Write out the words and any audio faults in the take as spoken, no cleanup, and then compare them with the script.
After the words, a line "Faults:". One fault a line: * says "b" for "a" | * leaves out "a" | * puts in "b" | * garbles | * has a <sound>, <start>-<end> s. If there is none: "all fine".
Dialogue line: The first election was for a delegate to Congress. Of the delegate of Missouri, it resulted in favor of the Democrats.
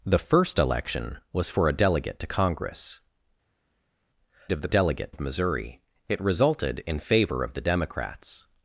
The first election was for a delegate to Congress. Of the delegate of Missouri, it resulted in favor of the Democrats.
Faults:
all fine